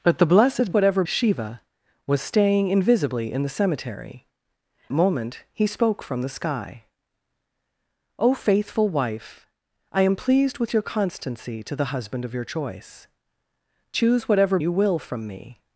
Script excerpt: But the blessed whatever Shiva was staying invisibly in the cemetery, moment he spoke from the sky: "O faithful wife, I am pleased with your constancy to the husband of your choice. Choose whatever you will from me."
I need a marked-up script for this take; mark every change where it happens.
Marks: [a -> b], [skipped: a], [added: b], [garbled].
But the blessed whatever Shiva was staying invisibly in the cemetery, moment he spoke from the sky: "O faithful wife, I am pleased with your constancy to the husband of your choice. Choose whatever you will from me."